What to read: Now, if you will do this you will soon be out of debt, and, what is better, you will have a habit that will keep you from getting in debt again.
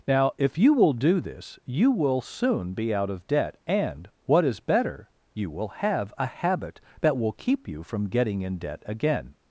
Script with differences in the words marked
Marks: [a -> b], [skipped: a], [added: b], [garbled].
Now, if you will do this you will soon be out of debt, and, what is better, you will have a habit that will keep you from getting in debt again.